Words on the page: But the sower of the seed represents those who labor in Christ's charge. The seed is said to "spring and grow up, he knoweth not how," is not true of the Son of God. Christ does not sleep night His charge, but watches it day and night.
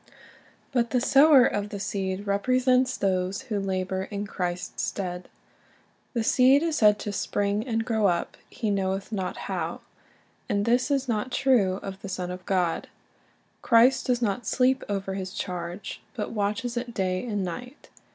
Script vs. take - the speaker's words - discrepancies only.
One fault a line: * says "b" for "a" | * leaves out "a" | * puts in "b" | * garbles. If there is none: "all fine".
* says "stead" for "charge"
* puts in "and this"
* says "over" for "night"